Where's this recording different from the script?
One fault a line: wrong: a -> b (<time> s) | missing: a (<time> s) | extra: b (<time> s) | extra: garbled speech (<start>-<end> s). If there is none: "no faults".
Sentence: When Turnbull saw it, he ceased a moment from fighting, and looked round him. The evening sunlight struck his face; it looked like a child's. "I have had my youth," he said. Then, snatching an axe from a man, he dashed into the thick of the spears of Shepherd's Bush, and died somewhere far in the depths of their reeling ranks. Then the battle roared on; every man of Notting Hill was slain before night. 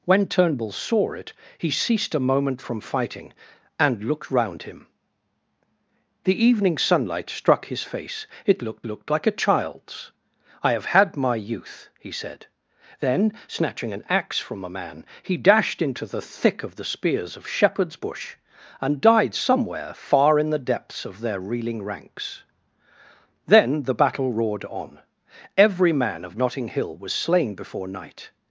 extra: looked (8.9 s)